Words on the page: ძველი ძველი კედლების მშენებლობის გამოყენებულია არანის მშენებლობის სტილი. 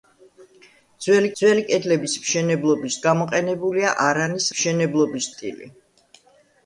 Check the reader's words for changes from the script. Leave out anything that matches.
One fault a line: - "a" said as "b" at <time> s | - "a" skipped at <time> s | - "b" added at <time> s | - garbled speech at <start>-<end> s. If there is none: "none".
none